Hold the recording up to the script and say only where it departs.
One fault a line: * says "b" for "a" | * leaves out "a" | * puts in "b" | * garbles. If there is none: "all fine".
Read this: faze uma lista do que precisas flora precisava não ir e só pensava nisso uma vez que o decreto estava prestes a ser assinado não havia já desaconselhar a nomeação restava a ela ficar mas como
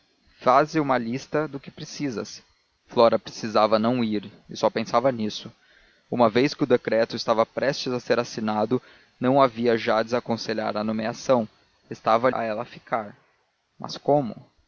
all fine